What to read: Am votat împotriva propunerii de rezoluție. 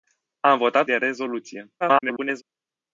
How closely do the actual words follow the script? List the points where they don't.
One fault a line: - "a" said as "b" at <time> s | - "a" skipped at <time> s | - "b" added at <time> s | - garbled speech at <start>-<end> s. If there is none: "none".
- "împotriva propunerii" skipped at 0.9 s
- garbled speech at 1.8-2.4 s